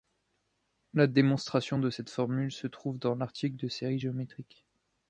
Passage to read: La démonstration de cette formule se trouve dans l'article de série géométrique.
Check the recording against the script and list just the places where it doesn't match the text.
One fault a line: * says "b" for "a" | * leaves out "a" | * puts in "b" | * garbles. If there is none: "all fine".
all fine